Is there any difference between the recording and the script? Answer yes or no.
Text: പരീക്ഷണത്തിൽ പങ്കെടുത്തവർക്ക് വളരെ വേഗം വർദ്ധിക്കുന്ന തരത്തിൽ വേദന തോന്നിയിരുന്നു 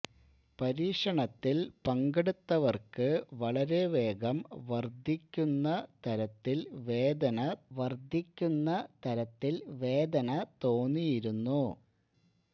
yes